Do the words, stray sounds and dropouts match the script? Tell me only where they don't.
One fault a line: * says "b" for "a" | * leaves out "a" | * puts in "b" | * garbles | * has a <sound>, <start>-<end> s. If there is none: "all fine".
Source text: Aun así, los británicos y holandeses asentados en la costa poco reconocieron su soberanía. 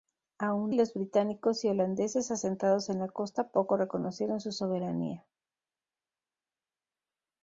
* leaves out "así"